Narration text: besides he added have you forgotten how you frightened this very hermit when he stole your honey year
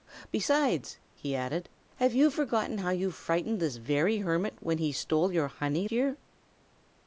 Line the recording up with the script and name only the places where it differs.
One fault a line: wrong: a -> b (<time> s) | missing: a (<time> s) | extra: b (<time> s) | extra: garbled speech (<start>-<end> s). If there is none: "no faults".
no faults